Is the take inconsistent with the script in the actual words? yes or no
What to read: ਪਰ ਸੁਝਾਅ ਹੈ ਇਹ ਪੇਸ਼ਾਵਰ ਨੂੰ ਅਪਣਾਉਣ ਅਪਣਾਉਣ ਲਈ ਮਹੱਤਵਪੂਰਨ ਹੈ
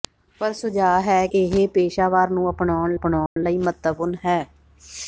no